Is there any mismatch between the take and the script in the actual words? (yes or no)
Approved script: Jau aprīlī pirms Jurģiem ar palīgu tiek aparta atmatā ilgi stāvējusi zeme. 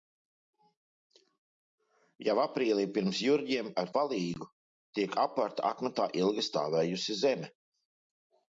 no